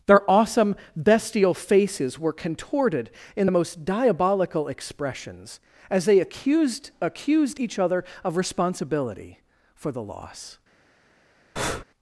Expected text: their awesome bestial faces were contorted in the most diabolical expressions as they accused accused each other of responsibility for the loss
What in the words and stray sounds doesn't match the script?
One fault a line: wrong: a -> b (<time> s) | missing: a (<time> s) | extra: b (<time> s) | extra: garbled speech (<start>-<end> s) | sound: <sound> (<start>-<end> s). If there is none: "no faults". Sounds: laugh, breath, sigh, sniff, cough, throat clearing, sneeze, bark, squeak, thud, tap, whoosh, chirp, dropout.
sound: breath (11.6-11.8 s)